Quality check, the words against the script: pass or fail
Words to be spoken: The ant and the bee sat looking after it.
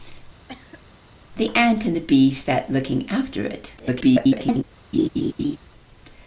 fail